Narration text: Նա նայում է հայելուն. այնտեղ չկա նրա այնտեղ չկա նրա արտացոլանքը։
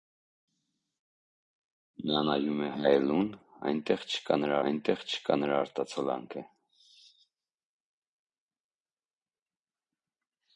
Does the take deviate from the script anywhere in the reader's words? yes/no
no